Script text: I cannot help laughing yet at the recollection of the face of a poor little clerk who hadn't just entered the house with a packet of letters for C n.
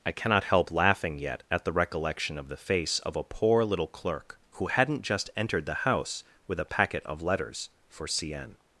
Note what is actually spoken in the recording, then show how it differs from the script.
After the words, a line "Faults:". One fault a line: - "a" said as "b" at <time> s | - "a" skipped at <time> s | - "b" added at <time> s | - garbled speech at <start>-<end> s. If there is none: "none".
I cannot help laughing yet at the recollection of the face of a poor little clerk who hadn't just entered the house with a packet of letters for C n.
Faults:
none